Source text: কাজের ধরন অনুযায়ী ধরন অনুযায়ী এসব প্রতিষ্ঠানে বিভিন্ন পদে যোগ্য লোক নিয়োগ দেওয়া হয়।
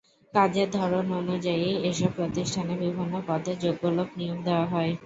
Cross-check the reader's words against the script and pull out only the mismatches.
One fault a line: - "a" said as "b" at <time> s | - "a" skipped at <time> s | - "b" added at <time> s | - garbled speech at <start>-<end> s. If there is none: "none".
- "ধরন অনুযায়ী" skipped at 1.7 s